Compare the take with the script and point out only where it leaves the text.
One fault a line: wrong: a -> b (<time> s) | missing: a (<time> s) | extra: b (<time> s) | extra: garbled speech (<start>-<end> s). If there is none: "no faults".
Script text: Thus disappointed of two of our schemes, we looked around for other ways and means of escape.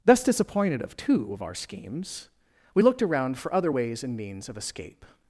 no faults